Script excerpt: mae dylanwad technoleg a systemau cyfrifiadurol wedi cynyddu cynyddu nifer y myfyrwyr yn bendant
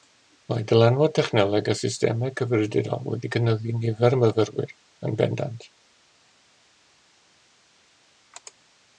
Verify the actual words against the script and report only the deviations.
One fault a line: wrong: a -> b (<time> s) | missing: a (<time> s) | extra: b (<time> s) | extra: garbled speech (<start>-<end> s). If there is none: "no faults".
missing: cynyddu (3.8 s)